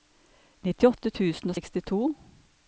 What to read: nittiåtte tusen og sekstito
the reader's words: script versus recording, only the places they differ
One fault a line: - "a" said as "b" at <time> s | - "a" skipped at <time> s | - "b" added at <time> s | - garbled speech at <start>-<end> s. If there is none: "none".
none